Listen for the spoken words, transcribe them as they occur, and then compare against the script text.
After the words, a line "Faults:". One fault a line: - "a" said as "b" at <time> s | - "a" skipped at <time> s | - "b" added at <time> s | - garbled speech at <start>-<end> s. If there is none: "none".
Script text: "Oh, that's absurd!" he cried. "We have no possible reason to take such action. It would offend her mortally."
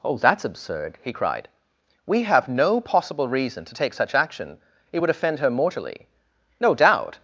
"Oh, that's absurd!" he cried. "We have no possible reason to take such action. It would offend her mortally." "No doubt
Faults:
- "No doubt" added at 6.6 s